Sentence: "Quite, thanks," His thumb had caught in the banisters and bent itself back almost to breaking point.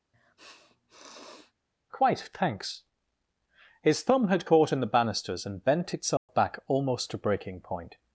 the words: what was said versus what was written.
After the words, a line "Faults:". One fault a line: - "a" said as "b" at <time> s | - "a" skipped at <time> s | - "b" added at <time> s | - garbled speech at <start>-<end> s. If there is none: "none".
"Quite, thanks," His thumb had caught in the banisters and bent itself back almost to breaking point.
Faults:
none